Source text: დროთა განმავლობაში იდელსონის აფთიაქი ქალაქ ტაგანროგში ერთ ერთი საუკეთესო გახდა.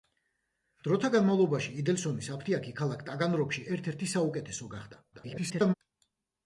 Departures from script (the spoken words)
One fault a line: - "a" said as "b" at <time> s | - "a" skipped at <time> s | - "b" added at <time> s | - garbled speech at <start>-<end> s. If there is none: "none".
- garbled speech at 5.1-5.7 s